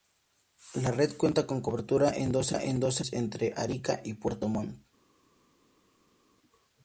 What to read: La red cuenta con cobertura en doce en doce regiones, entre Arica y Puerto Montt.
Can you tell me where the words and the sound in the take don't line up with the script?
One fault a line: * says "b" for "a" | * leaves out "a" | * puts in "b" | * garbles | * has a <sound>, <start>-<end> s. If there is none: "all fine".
* leaves out "en doce"